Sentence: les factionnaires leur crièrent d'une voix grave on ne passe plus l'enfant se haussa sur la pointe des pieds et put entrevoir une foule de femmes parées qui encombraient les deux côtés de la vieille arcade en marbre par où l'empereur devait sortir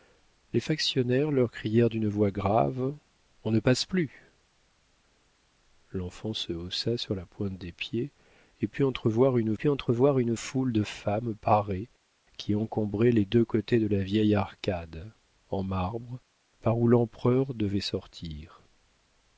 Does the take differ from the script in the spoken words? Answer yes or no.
yes